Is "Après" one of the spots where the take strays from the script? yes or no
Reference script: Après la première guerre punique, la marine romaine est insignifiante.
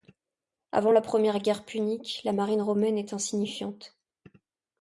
yes